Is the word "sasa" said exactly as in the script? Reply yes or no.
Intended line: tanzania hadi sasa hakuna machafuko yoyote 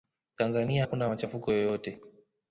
no